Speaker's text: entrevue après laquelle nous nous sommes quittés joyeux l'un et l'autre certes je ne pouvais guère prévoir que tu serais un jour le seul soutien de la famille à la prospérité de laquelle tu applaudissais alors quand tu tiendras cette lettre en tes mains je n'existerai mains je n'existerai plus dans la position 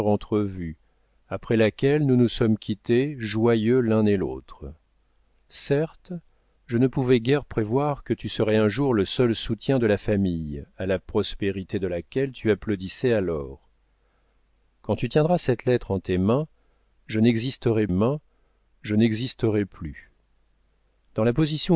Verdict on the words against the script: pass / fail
pass